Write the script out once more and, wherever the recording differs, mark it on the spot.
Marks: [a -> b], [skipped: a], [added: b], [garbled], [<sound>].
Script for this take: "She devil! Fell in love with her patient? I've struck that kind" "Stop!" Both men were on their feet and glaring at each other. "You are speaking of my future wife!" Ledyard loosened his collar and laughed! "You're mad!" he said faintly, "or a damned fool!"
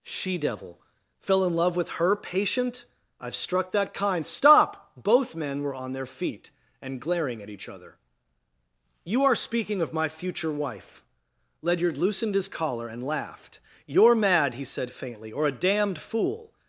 "She devil! Fell in love with her patient? I've struck that kind" "Stop!" Both men were on their feet and glaring at each other. "You are speaking of my future wife!" Ledyard loosened his collar and laughed! "You're mad!" he said faintly, "or a damned fool!"